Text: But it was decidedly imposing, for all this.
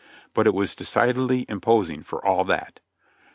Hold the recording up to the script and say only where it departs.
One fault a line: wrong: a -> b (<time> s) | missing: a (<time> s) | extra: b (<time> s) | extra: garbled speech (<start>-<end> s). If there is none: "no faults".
wrong: this -> that (2.5 s)